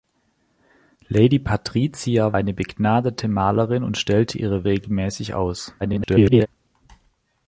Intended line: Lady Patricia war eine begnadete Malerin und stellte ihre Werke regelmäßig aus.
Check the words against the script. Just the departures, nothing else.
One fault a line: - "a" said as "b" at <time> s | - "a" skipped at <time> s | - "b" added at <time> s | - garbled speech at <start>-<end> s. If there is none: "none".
- "war" skipped at 2.4 s
- "Werke" skipped at 4.7 s
- garbled speech at 5.8-6.5 s